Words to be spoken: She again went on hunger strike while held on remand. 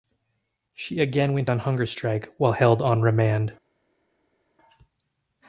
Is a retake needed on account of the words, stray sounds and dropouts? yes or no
no